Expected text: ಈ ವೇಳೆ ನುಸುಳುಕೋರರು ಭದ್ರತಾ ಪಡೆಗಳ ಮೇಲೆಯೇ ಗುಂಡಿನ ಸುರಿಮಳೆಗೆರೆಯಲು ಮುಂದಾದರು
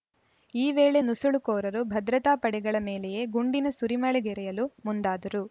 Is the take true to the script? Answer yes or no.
yes